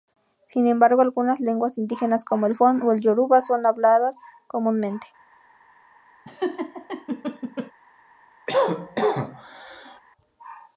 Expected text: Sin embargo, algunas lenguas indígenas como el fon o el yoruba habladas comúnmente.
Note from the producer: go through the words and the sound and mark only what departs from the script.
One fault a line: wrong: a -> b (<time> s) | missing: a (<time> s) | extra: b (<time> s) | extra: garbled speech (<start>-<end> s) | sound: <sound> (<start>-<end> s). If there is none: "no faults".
extra: son (3.4 s)
sound: laugh (6.2-7.7 s)
sound: cough (8.5-10.0 s)